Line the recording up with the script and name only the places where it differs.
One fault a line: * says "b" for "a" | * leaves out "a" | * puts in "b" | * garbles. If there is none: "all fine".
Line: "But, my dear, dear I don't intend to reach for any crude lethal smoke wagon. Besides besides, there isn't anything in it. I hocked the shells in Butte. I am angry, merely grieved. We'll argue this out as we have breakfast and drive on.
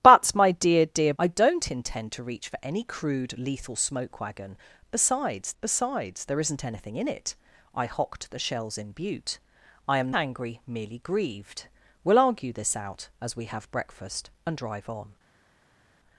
all fine